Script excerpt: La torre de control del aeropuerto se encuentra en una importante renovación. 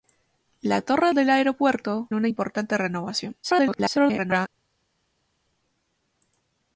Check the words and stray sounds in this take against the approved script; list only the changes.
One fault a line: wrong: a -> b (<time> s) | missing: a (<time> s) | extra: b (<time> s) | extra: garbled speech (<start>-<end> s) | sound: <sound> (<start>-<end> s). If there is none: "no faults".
missing: de control (1.1 s)
missing: se encuentra en (2.1 s)
extra: garbled speech (3.4-4.5 s)